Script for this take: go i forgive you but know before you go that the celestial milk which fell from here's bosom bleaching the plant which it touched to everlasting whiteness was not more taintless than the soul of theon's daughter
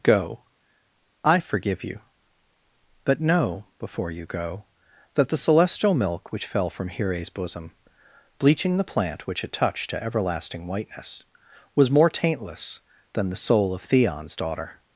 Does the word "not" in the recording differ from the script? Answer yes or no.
yes